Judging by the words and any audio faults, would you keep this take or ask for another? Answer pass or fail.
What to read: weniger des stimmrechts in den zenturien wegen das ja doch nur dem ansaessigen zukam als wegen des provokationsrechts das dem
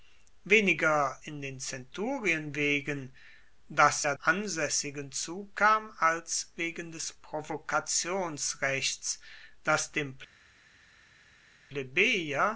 fail